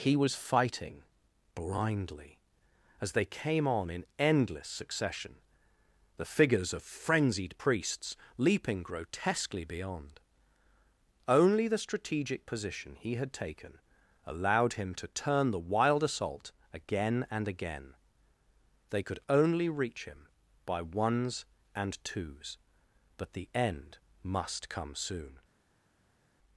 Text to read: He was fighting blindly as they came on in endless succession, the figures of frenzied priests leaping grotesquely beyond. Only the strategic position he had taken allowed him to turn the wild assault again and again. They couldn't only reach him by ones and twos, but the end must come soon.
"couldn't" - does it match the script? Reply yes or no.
no